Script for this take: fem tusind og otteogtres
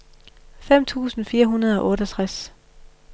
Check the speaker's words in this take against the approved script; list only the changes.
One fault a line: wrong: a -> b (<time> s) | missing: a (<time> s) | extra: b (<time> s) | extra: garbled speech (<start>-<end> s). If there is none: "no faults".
extra: fire hundrede (1.2 s)